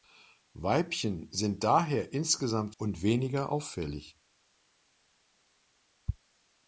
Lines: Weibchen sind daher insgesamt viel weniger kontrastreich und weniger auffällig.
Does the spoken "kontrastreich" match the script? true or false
false